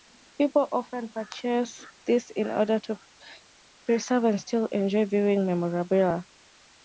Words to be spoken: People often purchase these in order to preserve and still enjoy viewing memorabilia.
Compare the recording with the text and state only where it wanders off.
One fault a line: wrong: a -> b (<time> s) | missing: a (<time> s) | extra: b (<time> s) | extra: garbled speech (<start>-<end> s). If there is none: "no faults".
no faults